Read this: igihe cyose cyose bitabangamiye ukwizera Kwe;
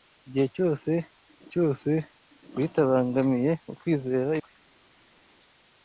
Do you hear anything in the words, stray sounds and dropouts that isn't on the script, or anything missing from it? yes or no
no